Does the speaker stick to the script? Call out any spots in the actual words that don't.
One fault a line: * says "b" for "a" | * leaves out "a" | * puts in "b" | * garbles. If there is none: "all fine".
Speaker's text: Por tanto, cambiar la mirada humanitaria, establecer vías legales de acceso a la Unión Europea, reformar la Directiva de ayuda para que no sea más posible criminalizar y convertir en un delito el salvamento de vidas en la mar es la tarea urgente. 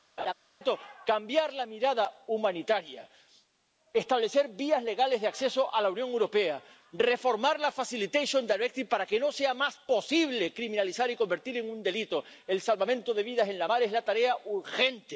all fine